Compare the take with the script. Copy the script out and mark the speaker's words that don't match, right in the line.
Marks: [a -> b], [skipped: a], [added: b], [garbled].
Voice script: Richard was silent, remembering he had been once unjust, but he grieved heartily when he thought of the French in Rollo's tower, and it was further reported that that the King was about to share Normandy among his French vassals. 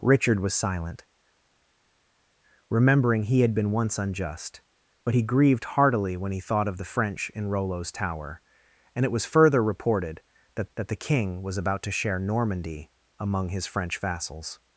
Richard was silent, remembering he had been once unjust, but he grieved heartily when he thought of the French in Rollo's tower, and it was further reported that that the King was about to share Normandy among his French vassals.